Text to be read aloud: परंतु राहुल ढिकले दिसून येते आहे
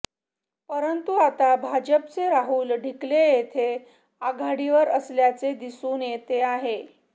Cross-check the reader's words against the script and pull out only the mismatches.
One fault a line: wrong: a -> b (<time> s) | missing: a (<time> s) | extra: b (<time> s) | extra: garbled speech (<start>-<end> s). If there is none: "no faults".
extra: आता भाजपचे (1.2 s)
extra: येथे आघाडीवर असल्याचे (3.3 s)